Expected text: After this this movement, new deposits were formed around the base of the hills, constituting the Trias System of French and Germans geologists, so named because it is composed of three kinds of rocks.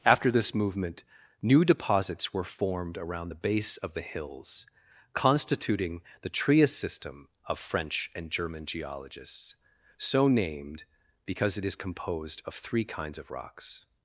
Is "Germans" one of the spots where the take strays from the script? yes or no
yes